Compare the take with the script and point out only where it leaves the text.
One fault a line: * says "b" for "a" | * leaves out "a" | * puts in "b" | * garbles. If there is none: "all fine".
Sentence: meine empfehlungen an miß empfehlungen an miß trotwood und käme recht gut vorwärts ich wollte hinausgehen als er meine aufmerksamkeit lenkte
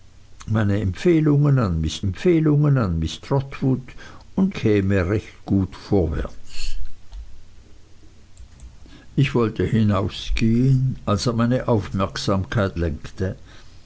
all fine